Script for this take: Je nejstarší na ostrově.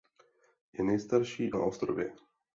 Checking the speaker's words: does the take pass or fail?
pass